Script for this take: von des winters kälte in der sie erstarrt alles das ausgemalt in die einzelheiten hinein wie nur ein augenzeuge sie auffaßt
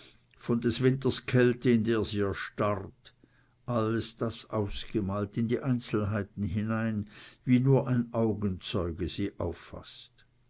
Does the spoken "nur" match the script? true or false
true